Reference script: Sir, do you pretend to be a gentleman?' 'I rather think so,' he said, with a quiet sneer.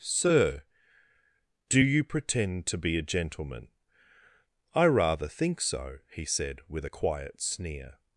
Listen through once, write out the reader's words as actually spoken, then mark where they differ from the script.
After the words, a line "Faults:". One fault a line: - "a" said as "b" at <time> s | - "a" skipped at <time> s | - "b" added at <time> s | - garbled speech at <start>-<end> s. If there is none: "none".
Sir, do you pretend to be a gentleman?' 'I rather think so,' he said, with a quiet sneer.
Faults:
none